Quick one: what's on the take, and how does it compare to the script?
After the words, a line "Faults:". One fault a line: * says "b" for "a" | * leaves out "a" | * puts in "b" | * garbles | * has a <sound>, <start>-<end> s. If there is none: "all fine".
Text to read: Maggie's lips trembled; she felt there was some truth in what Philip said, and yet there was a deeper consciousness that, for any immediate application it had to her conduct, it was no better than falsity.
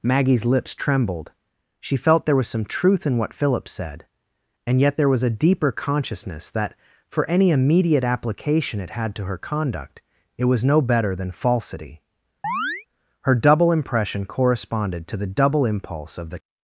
Maggie's lips trembled; she felt there was some truth in what Philip said, and yet there was a deeper consciousness that, for any immediate application it had to her conduct, it was no better than falsity. Her double impression corresponded to the double impulse of the
Faults:
* has a chirp, 12.4-12.9 s
* puts in "Her double impression corresponded to the double impulse of the"